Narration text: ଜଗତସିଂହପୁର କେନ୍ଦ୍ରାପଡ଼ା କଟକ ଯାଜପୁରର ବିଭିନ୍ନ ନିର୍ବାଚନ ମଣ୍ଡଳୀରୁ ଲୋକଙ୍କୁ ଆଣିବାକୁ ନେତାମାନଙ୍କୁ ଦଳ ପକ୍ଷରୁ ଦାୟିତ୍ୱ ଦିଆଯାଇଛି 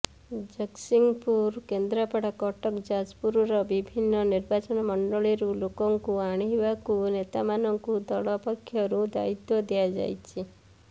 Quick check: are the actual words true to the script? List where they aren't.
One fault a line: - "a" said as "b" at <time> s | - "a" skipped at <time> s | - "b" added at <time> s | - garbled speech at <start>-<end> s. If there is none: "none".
none